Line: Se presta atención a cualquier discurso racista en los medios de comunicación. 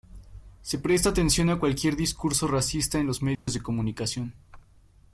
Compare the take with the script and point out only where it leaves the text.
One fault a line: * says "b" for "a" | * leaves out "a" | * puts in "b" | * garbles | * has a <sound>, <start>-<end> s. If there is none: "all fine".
* has a dropout, 3.4-3.5 s